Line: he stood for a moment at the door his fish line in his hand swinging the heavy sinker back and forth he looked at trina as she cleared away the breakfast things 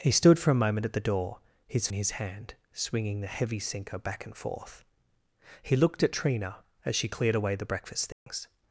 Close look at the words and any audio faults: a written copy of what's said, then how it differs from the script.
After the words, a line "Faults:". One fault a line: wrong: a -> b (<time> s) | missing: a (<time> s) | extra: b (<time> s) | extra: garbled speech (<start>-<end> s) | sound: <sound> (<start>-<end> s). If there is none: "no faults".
he stood for a moment at the door his his hand swinging the heavy sinker back and forth he looked at trina as she cleared away the breakfast things
Faults:
missing: fish line in (1.9 s)
sound: dropout (8.1-8.3 s)